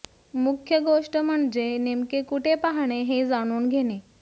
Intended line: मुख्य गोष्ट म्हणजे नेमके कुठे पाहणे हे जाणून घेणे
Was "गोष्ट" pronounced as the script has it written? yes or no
yes